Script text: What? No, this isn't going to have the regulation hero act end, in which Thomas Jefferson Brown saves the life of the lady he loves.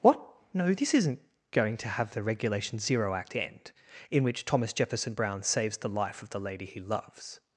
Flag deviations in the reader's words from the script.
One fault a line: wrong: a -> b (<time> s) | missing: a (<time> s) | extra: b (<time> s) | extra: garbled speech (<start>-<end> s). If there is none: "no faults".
wrong: hero -> zero (2.8 s)